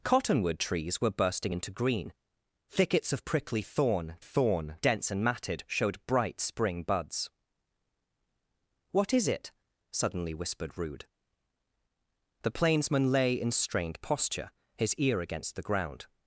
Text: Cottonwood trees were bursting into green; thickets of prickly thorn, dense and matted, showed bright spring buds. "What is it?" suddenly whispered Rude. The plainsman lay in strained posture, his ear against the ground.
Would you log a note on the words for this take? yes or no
yes